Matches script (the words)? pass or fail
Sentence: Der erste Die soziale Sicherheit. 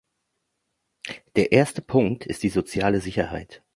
fail